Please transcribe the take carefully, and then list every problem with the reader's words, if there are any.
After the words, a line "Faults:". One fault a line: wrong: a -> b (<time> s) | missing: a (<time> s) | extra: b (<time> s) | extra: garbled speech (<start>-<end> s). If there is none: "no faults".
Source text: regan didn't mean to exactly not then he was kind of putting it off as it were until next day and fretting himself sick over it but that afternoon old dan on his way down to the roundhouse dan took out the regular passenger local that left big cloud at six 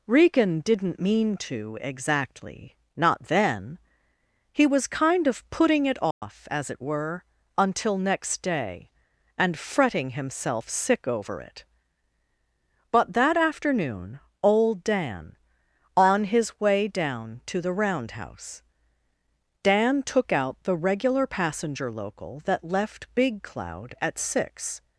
regan didn't mean to exactly not then he was kind of putting it off as it were until next day and fretting himself sick over it but that afternoon old dan on his way down to the roundhouse dan took out the regular passenger local that left big cloud at six
Faults:
no faults